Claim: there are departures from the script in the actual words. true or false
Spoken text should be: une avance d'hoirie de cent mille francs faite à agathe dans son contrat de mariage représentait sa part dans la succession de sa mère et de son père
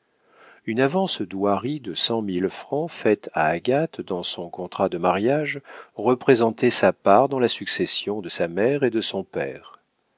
false